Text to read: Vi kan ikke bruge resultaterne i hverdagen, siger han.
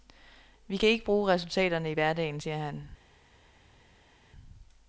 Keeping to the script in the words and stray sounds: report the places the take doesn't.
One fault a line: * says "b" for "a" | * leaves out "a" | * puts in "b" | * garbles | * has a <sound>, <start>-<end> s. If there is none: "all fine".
all fine